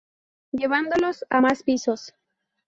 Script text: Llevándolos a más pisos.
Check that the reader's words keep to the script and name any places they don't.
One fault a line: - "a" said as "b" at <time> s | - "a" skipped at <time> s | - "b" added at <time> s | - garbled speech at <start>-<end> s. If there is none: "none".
none